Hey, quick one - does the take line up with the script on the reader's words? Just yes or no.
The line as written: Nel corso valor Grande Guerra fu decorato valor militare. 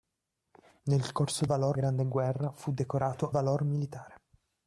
yes